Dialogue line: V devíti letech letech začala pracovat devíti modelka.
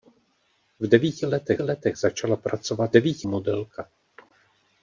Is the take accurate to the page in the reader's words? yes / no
yes